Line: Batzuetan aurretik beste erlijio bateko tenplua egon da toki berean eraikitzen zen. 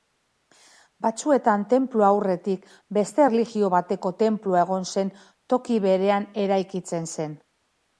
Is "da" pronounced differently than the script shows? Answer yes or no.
yes